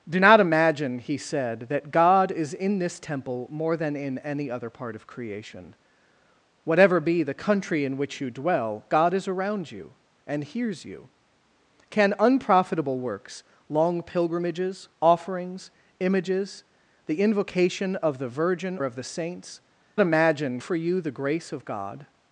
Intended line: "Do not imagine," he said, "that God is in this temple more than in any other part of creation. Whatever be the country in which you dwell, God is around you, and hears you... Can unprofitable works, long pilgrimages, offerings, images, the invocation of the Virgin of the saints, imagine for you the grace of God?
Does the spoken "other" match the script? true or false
true